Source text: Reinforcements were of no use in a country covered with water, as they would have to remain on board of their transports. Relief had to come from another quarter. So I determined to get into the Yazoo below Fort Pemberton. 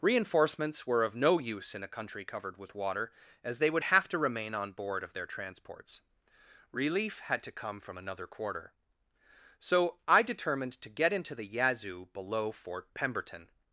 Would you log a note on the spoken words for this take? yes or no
no